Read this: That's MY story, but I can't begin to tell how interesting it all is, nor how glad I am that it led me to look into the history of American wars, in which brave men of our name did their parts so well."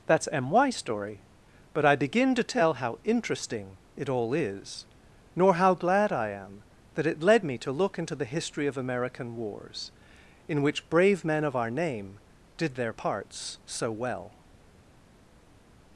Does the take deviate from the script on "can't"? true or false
true